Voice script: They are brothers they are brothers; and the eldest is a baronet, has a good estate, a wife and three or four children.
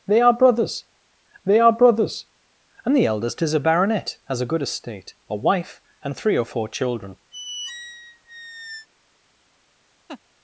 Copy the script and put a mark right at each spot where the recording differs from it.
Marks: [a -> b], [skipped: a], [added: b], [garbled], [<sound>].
They are brothers they are brothers; and the eldest is a baronet, has a good estate, a wife and three or four children. [squeak] [laugh]